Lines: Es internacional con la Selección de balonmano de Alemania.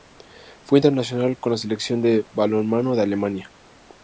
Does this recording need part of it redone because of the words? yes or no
yes